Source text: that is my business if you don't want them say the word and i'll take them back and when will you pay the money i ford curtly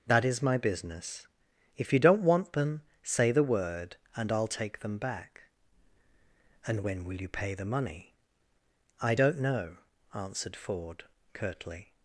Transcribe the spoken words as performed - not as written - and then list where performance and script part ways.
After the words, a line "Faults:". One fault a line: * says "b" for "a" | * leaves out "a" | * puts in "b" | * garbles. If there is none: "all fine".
that is my business if you don't want them say the word and i'll take them back and when will you pay the money i don't know answered ford curtly
Faults:
* puts in "don't know answered"